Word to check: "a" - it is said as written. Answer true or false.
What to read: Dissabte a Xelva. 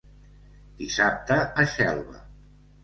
true